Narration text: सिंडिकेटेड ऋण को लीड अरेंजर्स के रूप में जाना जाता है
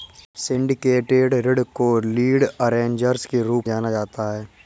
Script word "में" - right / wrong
wrong